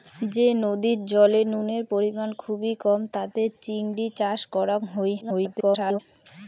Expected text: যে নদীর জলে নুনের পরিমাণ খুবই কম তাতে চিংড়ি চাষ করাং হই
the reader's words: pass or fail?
fail